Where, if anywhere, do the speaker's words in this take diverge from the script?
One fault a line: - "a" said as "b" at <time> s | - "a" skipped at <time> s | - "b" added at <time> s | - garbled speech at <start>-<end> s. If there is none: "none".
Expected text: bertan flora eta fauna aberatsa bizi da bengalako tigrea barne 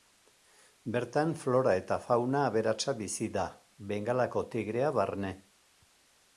none